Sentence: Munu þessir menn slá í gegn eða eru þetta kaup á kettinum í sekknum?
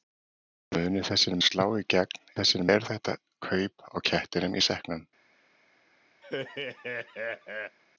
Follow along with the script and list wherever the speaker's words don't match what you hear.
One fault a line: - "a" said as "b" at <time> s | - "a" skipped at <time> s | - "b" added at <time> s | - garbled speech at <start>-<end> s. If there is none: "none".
- "menn" skipped at 1.4 s
- "eða" said as "þessir" at 2.4 s